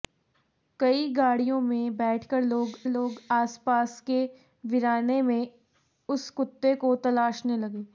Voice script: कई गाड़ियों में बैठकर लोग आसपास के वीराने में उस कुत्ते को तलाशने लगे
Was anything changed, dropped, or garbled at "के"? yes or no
no